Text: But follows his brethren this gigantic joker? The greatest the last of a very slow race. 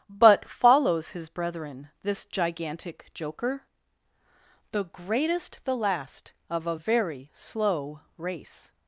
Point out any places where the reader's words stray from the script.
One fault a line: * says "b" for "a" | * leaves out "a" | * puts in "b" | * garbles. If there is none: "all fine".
all fine